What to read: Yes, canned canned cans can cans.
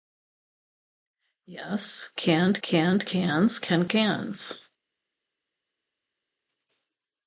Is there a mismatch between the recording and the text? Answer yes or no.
no